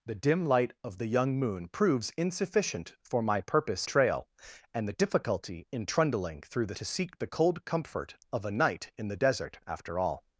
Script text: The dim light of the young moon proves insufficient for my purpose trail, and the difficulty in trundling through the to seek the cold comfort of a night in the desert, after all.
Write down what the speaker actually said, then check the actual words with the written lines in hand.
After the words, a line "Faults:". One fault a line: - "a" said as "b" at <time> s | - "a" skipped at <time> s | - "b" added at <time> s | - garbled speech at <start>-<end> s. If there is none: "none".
The dim light of the young moon proves insufficient for my purpose trail, and the difficulty in trundling through the to seek the cold comfort of a night in the desert, after all.
Faults:
none